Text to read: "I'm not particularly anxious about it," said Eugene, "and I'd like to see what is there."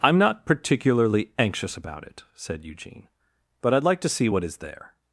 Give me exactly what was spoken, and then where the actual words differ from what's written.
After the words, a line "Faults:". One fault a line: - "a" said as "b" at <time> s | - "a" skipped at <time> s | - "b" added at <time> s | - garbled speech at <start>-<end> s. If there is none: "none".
"I'm not particularly anxious about it," said Eugene, "but I'd like to see what is there."
Faults:
- "and" said as "but" at 3.6 s